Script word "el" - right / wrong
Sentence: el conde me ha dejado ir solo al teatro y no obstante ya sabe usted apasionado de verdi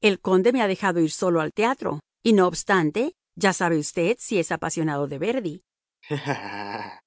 right